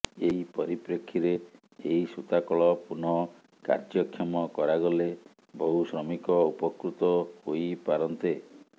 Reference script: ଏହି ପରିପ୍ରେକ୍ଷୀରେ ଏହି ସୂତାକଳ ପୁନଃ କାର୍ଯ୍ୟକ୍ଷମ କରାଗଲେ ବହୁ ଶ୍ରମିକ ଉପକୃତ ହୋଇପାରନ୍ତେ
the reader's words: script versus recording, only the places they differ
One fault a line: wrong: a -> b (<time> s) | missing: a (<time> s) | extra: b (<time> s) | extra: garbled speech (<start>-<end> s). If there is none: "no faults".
no faults